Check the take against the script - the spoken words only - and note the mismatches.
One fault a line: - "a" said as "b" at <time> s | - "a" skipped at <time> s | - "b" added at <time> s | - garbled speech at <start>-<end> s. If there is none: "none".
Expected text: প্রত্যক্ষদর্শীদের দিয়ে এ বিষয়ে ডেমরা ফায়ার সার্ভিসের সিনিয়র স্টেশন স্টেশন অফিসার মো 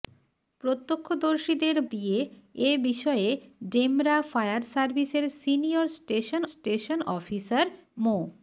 none